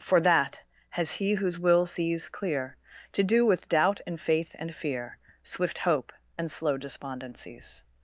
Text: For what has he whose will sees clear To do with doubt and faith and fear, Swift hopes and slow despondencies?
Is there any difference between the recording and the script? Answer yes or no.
yes